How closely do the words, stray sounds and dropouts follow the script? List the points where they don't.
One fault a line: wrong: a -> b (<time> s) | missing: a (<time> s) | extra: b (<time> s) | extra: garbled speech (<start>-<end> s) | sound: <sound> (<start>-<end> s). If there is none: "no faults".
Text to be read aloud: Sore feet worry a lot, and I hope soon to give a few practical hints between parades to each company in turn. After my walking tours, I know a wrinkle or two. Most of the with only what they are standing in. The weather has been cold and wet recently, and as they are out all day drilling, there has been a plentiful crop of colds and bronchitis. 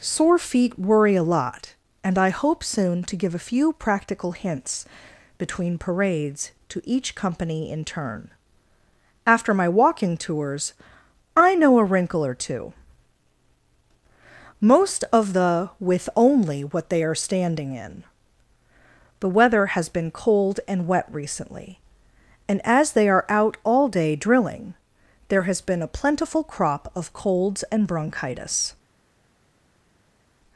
no faults